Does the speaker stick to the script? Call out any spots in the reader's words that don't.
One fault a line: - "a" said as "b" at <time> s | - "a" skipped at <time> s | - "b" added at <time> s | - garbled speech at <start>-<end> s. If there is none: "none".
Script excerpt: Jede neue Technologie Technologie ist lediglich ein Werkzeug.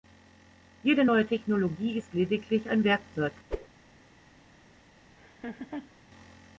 - "Technologie" skipped at 2.0 s